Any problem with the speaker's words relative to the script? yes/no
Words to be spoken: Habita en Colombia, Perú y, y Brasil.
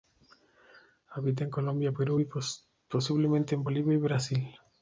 yes